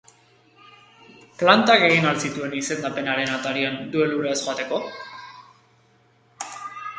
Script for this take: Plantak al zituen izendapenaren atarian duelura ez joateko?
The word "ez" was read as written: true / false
true